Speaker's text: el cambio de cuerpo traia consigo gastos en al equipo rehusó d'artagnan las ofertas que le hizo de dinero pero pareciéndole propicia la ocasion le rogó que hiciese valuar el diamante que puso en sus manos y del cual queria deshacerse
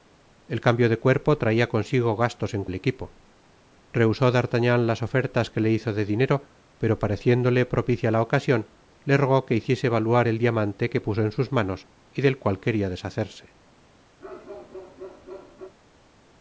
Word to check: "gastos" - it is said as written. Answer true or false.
true